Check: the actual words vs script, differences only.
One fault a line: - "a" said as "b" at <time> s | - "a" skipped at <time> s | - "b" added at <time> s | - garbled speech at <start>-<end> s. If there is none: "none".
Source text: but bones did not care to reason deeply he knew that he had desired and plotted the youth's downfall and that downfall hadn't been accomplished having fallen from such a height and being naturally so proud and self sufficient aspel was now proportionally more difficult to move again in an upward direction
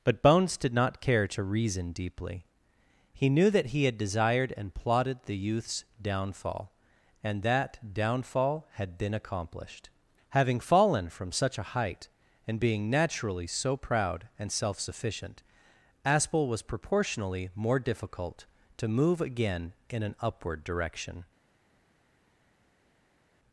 - "hadn't" said as "had" at 8.7 s
- "now" skipped at 16.6 s